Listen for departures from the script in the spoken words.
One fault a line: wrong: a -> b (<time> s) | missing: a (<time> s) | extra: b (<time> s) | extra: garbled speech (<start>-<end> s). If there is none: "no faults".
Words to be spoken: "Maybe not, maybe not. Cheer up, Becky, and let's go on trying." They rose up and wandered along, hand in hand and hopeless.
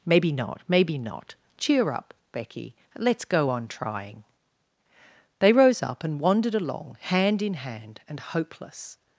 missing: and (2.7 s)